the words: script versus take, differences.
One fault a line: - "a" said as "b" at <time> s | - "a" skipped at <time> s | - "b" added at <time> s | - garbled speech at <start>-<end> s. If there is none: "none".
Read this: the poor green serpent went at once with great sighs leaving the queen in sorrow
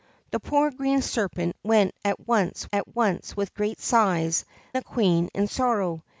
- "at once" added at 2.7 s
- "leaving" skipped at 4.4 s